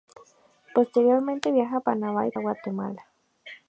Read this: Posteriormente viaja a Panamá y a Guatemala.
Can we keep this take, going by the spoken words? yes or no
yes